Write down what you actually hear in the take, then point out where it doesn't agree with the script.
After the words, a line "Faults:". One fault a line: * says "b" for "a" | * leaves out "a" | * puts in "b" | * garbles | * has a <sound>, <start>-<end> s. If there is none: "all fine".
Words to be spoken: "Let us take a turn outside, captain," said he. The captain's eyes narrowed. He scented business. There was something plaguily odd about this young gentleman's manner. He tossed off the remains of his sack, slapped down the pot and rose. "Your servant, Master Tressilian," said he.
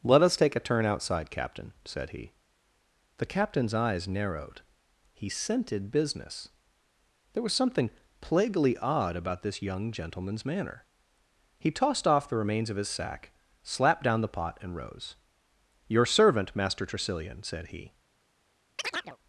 "Let us take a turn outside, captain," said he. The captain's eyes narrowed. He scented business. There was something plaguily odd about this young gentleman's manner. He tossed off the remains of his sack, slapped down the pot and rose. "Your servant, Master Tressilian," said he.
Faults:
* has a chirp, 18.8-19.2 s